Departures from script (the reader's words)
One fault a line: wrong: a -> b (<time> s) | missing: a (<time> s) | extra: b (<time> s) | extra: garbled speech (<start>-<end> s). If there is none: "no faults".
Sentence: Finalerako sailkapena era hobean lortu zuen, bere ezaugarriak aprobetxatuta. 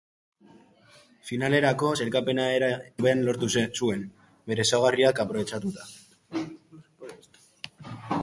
no faults